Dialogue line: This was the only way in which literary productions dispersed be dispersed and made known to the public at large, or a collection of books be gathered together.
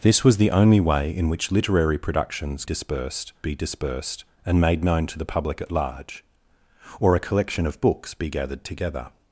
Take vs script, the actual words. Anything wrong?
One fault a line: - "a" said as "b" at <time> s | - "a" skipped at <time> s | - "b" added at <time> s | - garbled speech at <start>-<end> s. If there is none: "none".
none